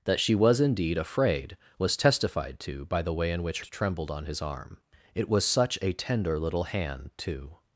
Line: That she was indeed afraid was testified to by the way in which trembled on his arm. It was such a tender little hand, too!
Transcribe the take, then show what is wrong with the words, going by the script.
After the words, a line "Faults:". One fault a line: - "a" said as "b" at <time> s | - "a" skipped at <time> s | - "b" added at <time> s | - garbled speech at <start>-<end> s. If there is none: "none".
That she was indeed afraid was testified to by the way in which trembled on his arm. It was such a tender little hand, too!
Faults:
none